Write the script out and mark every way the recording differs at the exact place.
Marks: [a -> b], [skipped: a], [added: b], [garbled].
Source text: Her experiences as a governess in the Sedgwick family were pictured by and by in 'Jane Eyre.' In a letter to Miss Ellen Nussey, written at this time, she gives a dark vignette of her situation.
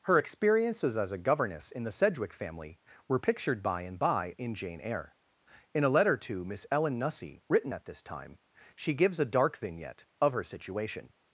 Her experiences as a governess in the Sedgwick family were pictured by and by in 'Jane Eyre.' In a letter to Miss Ellen Nussey, written at this time, she gives a dark vignette of her situation.